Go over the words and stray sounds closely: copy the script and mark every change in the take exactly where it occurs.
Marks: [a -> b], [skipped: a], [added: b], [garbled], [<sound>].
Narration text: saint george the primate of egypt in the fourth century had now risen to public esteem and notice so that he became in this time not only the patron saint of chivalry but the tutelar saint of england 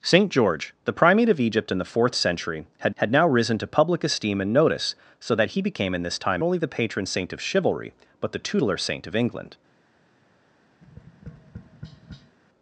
saint george the primate of egypt in the fourth century had [added: had] now risen to public esteem and notice so that he became in this time [skipped: not] only the patron saint of chivalry but the tutelar saint of england [tap]